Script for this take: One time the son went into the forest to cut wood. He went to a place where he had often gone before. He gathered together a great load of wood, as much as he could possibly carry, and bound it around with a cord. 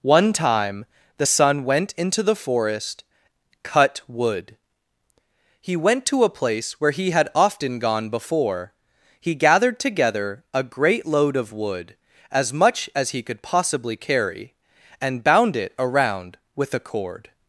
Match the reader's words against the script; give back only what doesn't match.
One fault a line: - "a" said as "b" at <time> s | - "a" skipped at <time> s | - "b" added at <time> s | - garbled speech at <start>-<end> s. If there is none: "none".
- "to" skipped at 3.0 s